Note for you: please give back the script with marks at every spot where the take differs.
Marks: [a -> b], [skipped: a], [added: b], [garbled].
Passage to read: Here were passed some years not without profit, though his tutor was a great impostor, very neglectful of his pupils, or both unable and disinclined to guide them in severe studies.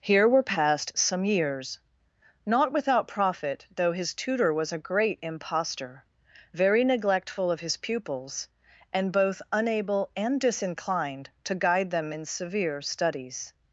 Here were passed some years not without profit, though his tutor was a great impostor, very neglectful of his pupils, [or -> and] both unable and disinclined to guide them in severe studies.